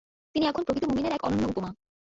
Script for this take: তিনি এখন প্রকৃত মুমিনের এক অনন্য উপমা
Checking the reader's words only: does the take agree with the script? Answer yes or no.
yes